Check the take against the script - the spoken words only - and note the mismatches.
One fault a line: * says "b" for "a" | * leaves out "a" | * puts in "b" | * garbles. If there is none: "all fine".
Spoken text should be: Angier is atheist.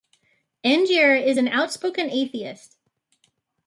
* puts in "an outspoken"